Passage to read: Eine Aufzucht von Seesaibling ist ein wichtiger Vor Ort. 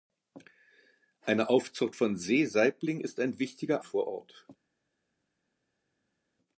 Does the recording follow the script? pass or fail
pass